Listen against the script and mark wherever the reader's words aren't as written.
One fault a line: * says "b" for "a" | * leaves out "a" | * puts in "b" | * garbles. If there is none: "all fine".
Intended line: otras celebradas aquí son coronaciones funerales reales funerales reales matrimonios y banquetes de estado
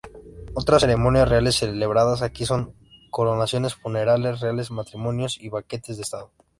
* puts in "ceremonias reales"
* leaves out "funerales reales"